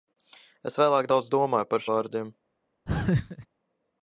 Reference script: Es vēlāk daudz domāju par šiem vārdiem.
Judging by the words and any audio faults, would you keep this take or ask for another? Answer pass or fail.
fail